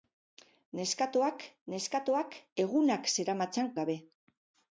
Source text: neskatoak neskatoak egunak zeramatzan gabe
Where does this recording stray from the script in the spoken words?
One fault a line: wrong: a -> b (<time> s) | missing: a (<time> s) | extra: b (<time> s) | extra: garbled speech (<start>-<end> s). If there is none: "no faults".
no faults